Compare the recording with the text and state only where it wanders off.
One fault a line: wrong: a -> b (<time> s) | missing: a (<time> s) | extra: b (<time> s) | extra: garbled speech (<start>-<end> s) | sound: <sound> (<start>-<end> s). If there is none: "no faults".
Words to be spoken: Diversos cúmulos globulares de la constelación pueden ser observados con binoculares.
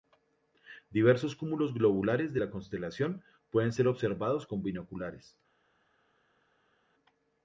no faults